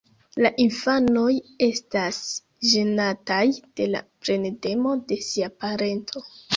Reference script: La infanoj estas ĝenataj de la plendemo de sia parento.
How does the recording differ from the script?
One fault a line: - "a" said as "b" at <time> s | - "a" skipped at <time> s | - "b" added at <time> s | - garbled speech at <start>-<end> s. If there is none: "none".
none